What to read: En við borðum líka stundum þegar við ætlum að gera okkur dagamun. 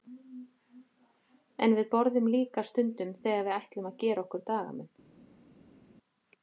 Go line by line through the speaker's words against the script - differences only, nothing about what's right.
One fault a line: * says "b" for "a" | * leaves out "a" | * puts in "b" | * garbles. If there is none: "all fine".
all fine